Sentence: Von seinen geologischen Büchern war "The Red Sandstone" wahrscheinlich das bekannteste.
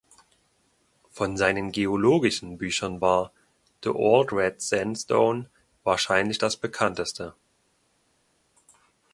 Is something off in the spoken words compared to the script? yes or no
yes